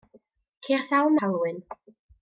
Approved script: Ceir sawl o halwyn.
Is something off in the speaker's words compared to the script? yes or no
no